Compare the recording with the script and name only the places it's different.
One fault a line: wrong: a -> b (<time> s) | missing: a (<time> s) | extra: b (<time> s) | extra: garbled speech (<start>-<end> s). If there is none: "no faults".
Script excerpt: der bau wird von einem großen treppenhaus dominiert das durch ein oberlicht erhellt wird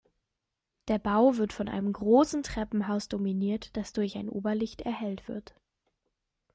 no faults